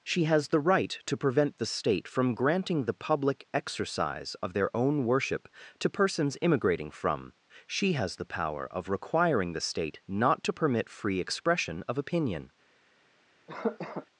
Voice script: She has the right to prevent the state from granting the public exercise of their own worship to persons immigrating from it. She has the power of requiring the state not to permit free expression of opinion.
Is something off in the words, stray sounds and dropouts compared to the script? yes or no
yes